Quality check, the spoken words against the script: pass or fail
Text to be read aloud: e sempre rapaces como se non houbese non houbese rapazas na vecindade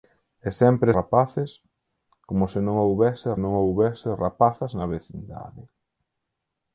pass